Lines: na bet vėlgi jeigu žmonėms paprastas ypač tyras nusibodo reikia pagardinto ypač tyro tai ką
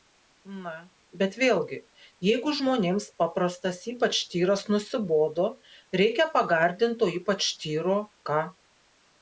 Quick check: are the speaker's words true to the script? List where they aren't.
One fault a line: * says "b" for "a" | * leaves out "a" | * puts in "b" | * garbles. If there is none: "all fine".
* leaves out "tai"